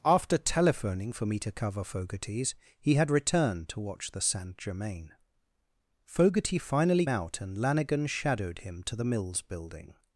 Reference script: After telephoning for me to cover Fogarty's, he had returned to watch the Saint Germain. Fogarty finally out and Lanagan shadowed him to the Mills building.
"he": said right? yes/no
yes